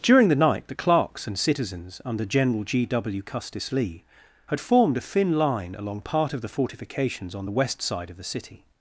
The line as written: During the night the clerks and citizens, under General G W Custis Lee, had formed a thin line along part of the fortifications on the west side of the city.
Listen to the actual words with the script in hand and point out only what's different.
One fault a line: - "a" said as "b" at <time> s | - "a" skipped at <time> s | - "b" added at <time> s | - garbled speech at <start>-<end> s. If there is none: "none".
none